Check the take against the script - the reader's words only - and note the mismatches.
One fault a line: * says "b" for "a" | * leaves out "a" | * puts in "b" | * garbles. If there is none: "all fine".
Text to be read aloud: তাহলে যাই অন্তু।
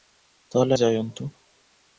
all fine